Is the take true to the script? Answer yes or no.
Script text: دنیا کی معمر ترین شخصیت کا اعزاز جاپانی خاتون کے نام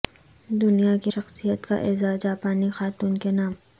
no